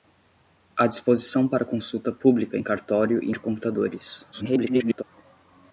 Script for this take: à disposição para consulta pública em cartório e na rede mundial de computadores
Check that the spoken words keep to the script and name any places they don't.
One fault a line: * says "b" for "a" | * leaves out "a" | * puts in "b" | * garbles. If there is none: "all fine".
* leaves out "na rede mundial"
* garbles